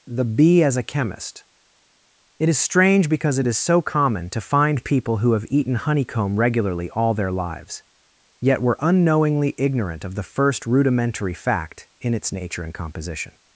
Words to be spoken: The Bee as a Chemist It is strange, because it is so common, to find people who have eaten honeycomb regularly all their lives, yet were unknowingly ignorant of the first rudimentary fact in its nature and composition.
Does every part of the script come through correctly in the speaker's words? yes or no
yes